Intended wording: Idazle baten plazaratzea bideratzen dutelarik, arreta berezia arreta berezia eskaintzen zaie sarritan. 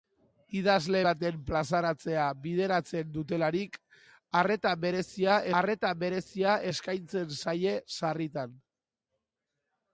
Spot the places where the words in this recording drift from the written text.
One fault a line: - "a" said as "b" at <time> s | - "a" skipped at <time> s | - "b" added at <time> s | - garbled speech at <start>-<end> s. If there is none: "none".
none